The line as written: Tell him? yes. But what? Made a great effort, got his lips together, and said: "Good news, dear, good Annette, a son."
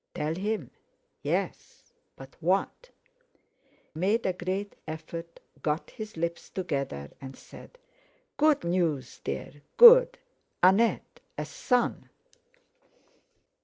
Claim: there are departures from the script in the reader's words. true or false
false